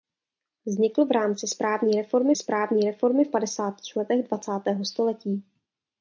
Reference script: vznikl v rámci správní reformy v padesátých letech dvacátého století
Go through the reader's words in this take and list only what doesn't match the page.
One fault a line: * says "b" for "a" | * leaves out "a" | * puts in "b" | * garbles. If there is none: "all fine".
* puts in "správní reformy"